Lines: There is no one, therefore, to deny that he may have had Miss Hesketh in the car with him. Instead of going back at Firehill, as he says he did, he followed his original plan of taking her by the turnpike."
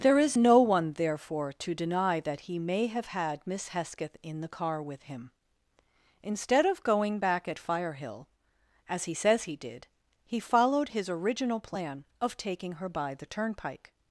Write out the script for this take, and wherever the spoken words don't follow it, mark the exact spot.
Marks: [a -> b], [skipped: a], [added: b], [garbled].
There is no one, therefore, to deny that he may have had Miss Hesketh in the car with him. Instead of going back at Firehill, as he says he did, he followed his original plan of taking her by the turnpike."